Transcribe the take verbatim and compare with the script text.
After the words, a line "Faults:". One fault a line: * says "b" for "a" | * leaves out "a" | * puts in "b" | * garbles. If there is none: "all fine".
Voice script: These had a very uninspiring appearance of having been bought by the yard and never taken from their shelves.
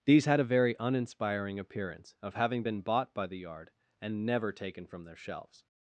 These had a very uninspiring appearance of having been bought by the yard and never taken from their shelves.
Faults:
all fine